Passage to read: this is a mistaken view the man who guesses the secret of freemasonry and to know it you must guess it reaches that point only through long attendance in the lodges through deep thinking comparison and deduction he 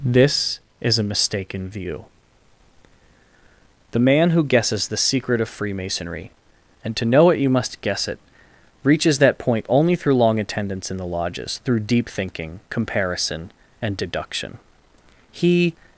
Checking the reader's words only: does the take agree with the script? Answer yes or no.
yes